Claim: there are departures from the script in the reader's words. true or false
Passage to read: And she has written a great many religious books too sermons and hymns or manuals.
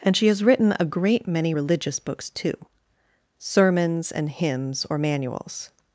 false